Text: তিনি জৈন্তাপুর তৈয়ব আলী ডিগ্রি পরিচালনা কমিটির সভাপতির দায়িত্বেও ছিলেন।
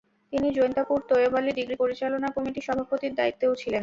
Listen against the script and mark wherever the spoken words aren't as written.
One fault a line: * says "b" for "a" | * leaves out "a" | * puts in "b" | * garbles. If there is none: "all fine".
all fine